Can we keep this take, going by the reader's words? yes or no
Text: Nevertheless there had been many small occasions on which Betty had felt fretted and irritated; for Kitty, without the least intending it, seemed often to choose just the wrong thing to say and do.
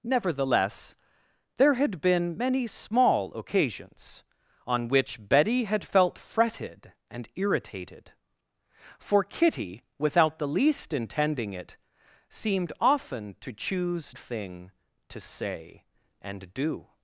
no